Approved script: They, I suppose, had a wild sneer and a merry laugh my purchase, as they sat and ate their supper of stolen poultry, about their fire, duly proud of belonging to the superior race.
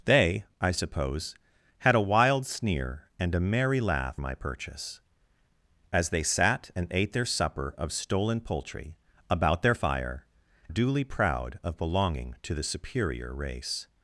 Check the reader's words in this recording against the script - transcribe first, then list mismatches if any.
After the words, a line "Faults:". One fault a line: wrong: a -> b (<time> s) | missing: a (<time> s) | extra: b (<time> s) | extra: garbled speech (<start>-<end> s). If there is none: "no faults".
They, I suppose, had a wild sneer and a merry laugh my purchase, as they sat and ate their supper of stolen poultry, about their fire, duly proud of belonging to the superior race.
Faults:
no faults